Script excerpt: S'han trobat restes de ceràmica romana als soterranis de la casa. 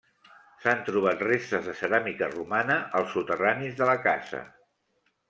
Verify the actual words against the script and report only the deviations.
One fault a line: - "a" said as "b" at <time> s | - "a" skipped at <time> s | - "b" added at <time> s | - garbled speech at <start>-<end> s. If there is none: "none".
none